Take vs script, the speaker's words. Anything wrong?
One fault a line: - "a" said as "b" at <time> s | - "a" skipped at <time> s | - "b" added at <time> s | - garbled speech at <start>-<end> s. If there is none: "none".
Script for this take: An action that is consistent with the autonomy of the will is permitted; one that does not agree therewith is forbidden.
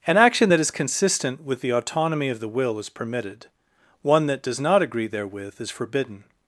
none